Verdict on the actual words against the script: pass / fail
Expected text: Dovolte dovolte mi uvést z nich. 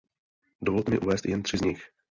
fail